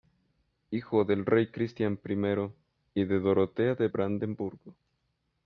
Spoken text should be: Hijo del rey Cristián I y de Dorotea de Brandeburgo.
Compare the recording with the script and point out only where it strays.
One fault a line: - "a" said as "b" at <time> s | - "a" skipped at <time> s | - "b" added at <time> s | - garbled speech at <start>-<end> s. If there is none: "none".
none